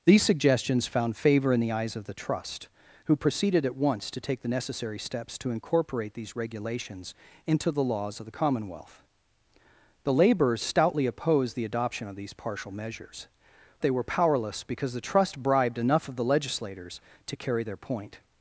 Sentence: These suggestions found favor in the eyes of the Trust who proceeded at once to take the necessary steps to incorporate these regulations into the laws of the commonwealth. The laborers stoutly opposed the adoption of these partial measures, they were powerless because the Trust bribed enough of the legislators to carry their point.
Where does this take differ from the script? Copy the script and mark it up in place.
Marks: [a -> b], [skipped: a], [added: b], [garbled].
These suggestions found favor in the eyes of the Trust who proceeded at once to take the necessary steps to incorporate these regulations into the laws of the commonwealth. The laborers stoutly opposed the adoption of these partial measures, they were powerless because the Trust bribed enough of the legislators to carry their point.